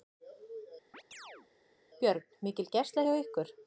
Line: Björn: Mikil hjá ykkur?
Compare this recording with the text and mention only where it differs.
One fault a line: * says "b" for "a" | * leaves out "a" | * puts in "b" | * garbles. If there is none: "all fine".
* puts in "gæsla"